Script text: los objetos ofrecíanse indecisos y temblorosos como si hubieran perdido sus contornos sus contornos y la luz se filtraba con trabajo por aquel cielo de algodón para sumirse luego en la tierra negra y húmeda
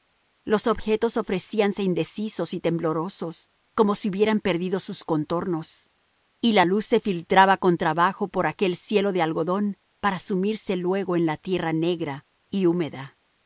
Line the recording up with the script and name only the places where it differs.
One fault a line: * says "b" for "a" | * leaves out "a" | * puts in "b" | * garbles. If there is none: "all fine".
* leaves out "sus contornos"